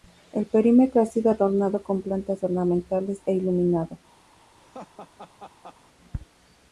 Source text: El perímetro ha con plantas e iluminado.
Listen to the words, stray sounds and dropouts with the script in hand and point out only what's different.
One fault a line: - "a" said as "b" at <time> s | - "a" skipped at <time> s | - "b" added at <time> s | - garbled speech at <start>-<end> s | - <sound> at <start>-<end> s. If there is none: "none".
- "sido adornado" added at 1.1 s
- "ornamentales" added at 2.4 s
- laugh at 4.6-5.8 s